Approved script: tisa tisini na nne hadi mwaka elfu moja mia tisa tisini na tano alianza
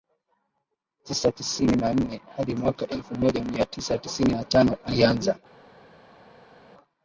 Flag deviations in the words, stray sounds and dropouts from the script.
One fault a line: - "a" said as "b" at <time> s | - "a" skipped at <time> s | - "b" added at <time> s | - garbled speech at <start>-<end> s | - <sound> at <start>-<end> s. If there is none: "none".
none